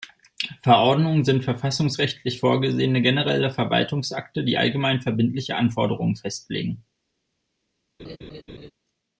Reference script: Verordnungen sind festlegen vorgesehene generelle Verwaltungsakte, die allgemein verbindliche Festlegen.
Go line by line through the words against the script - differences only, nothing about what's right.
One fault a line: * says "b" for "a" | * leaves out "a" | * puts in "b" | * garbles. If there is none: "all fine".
* says "verfassungsrechtlich" for "festlegen"
* puts in "Anforderungen"